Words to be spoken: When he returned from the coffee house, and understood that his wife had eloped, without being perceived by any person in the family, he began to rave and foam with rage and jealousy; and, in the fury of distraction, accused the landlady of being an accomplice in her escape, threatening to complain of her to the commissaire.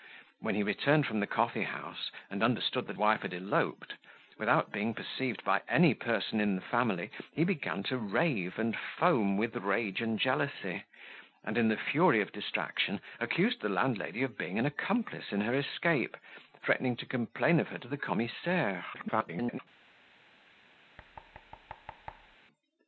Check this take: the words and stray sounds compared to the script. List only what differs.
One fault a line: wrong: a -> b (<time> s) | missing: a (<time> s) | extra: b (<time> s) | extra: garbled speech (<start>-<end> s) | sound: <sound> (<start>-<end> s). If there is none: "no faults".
missing: his (3.0 s)
extra: garbled speech (18.9-19.6 s)
sound: thud (21.0-22.4 s)